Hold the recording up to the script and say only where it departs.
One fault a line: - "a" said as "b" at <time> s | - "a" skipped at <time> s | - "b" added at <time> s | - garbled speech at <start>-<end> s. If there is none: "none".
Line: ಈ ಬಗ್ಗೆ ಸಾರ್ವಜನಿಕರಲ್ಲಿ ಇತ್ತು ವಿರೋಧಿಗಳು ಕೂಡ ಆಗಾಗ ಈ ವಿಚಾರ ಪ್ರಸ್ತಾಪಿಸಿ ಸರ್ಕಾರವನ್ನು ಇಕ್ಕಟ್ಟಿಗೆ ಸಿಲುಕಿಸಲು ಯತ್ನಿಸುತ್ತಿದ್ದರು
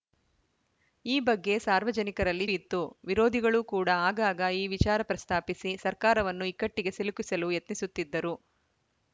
none